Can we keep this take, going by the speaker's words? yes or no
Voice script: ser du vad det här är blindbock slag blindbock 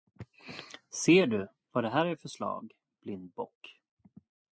no